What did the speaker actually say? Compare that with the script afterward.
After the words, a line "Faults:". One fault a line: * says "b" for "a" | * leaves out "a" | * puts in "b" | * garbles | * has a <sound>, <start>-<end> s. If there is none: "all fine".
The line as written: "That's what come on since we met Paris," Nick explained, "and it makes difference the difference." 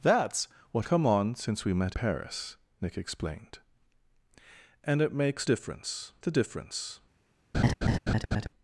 "That's what come on since we met Paris," Nick explained, "and it makes difference the difference."
Faults:
* has a laugh, 7.5-8.5 s